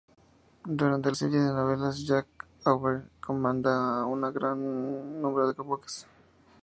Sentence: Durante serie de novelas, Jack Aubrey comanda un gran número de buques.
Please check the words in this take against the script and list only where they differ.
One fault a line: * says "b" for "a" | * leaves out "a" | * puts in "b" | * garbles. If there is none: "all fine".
all fine